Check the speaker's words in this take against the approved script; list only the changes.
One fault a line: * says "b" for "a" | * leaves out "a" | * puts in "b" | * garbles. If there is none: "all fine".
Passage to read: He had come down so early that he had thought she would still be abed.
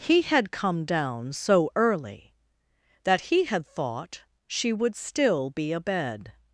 all fine